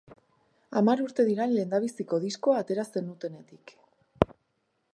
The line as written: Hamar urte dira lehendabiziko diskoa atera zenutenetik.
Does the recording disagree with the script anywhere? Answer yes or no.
no